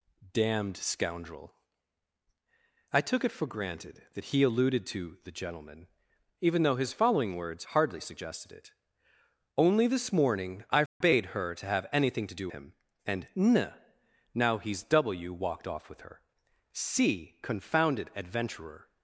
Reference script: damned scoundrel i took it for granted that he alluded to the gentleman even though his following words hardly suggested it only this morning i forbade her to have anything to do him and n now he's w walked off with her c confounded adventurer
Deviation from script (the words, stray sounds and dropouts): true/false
true